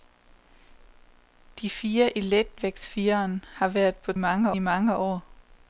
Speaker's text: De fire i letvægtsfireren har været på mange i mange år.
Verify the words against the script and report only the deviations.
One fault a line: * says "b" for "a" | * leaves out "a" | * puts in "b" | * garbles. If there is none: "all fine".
all fine